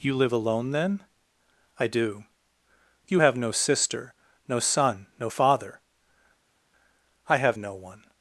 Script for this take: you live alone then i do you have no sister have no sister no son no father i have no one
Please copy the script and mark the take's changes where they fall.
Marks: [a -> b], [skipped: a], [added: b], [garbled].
you live alone then i do you have no sister [skipped: have no sister] no son no father i have no one